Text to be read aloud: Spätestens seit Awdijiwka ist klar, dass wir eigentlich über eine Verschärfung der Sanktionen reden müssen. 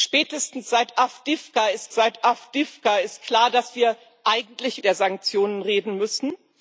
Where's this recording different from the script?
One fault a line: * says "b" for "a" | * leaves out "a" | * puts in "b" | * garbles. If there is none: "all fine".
* puts in "seit Awdijiwka ist"
* leaves out "über eine Verschärfung"